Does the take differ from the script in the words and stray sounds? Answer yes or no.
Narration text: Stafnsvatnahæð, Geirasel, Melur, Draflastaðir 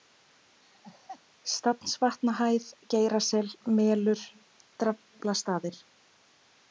yes